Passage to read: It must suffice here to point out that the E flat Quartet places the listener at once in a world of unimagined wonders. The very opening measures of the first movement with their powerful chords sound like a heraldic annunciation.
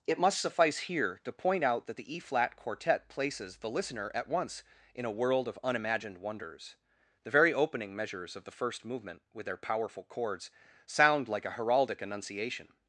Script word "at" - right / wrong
right